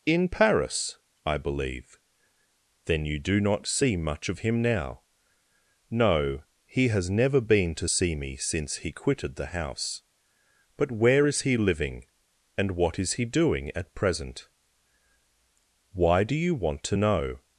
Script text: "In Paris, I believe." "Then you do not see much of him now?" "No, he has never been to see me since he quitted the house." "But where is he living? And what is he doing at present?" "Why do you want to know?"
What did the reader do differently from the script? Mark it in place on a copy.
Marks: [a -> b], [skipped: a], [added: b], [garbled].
"In Paris, I believe." "Then you do not see much of him now?" "No, he has never been to see me since he quitted the house." "But where is he living? And what is he doing at present?" "Why do you want to know?"